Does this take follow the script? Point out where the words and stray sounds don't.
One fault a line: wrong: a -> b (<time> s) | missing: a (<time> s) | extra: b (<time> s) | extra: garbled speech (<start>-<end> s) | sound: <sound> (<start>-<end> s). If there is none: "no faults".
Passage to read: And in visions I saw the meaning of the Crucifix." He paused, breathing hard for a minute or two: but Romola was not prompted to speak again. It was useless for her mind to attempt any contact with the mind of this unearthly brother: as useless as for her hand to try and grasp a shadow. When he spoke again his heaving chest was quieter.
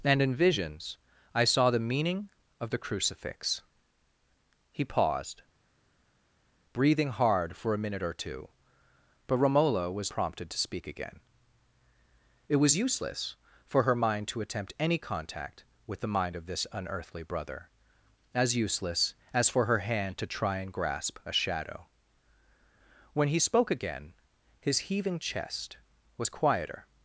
missing: not (10.1 s)